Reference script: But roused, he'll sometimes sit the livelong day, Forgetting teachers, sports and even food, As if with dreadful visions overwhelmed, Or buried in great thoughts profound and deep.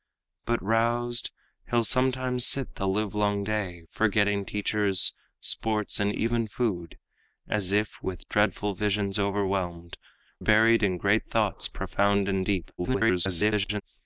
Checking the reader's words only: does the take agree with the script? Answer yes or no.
no